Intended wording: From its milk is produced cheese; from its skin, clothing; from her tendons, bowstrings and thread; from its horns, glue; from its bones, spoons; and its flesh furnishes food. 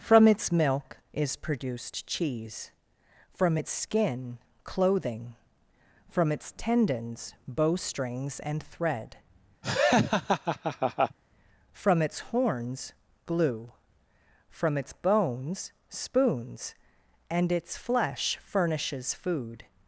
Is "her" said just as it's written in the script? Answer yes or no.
no